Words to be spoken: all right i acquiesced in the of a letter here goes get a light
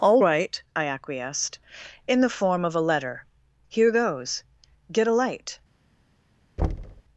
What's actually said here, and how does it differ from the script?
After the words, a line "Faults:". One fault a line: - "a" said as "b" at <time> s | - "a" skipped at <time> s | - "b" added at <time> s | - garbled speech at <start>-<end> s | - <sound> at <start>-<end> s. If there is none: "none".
all right i acquiesced in the form of a letter here goes get a light
Faults:
- "form" added at 2.3 s
- thud at 6.6-7.0 s